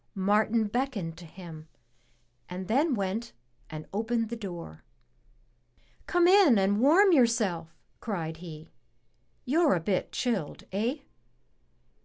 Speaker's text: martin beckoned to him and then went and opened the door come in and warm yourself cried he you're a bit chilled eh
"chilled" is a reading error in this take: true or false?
false